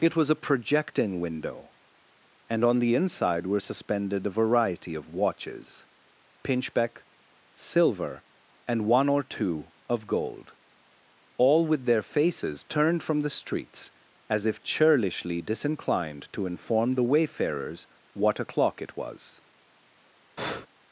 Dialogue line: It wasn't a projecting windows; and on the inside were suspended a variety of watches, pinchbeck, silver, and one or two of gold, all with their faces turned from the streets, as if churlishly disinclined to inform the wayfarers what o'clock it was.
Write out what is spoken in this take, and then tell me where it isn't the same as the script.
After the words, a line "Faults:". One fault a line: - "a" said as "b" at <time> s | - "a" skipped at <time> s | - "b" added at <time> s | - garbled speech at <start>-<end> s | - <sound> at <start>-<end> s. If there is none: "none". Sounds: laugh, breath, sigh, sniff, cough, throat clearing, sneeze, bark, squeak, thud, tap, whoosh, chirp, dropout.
It was a projecting window; and on the inside were suspended a variety of watches, pinchbeck, silver, and one or two of gold, all with their faces turned from the streets, as if churlishly disinclined to inform the wayfarers what o'clock it was.
Faults:
- "wasn't" said as "was" at 0.1 s
- "windows" said as "window" at 1.2 s
- breath at 20.4-20.7 s